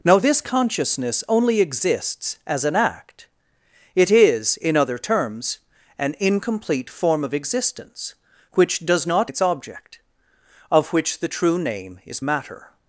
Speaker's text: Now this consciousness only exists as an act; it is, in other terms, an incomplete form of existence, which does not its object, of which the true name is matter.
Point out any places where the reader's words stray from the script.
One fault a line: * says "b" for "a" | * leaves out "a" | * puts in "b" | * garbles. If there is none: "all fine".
all fine